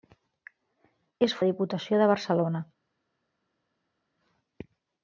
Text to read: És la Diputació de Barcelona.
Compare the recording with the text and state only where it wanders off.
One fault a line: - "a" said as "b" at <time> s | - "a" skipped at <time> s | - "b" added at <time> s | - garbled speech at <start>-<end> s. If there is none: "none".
none